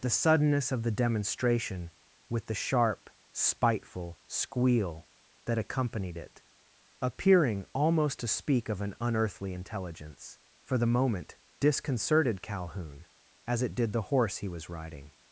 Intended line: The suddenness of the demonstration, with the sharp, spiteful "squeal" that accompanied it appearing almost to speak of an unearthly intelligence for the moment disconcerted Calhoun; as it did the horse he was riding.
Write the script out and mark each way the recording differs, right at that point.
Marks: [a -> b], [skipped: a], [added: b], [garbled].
The suddenness of the demonstration, with the sharp, spiteful "squeal" that accompanied it appearing almost to speak of an unearthly intelligence for the moment disconcerted Calhoun; as it did the horse he was riding.